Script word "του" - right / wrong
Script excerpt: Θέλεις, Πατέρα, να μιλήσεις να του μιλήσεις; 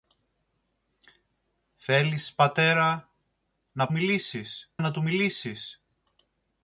right